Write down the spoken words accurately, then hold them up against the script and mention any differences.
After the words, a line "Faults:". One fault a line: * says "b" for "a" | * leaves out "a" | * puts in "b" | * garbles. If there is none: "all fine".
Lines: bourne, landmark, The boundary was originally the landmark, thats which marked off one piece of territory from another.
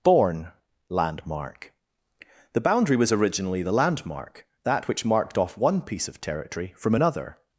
bourne, landmark, The boundary was originally the landmark, that which marked off one piece of territory from another.
Faults:
* says "that" for "thats"